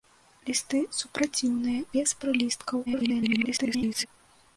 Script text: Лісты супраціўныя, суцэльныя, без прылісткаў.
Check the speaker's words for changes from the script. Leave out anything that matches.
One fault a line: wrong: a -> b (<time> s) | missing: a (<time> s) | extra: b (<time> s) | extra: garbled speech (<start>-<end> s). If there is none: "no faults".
missing: суцэльныя (1.8 s)
extra: garbled speech (2.9-4.1 s)